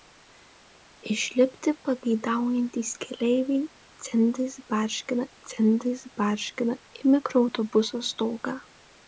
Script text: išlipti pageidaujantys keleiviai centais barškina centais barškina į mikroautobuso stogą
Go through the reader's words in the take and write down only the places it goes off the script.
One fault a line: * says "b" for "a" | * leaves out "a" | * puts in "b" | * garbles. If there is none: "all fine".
all fine